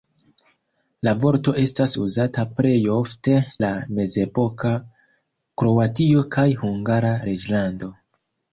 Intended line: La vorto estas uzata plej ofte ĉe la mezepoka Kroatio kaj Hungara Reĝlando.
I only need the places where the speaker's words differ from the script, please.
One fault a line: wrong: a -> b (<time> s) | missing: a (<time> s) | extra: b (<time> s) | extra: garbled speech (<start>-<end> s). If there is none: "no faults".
missing: ĉe (3.4 s)